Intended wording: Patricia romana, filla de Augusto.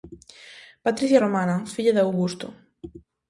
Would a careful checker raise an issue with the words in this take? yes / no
no